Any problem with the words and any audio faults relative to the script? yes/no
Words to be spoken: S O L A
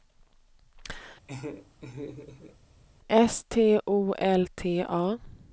yes